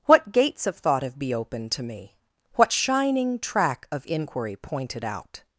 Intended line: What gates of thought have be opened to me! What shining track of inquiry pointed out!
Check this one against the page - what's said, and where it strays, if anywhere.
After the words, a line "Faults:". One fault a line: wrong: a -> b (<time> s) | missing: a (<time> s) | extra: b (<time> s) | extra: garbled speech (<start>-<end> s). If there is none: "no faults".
What gates of thought have be opened to me! What shining track of inquiry pointed out!
Faults:
no faults